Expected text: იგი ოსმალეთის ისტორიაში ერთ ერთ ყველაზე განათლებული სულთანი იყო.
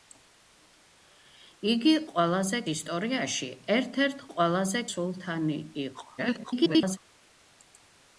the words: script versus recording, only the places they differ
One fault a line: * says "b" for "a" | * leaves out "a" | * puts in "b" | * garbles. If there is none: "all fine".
* says "ყველაზე" for "ოსმალეთის"
* leaves out "განათლებული"
* garbles